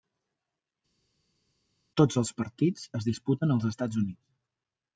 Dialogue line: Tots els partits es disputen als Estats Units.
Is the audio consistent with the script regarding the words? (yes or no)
yes